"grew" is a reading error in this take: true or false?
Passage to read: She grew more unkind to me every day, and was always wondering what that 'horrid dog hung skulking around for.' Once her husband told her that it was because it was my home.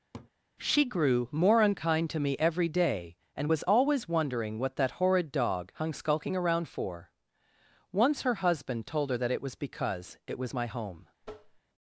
false